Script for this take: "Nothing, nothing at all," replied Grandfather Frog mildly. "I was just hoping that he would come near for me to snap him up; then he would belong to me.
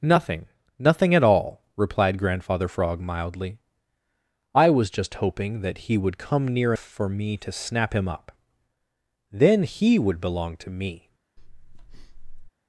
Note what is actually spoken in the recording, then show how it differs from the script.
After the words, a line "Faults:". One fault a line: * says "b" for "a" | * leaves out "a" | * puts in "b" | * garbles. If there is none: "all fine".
"Nothing, nothing at all," replied Grandfather Frog mildly. "I was just hoping that he would come near for me to snap him up; then he would belong to me.
Faults:
all fine